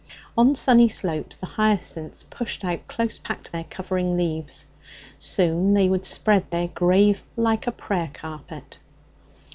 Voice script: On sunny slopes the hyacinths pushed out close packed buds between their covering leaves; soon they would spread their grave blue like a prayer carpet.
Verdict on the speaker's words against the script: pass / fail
fail